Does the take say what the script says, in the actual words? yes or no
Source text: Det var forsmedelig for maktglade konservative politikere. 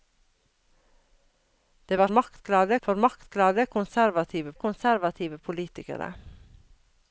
no